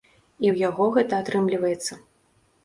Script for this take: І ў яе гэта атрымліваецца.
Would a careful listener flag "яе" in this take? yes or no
yes